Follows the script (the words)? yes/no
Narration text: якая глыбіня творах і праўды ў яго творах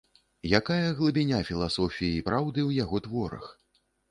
no